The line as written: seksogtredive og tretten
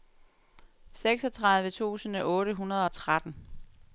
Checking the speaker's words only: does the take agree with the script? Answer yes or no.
no